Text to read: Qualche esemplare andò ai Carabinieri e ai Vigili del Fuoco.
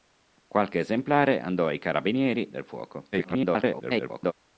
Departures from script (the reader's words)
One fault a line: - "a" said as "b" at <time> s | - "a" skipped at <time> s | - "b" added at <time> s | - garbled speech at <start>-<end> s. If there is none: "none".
- "e ai Vigili" skipped at 2.5 s
- garbled speech at 3.1-4.3 s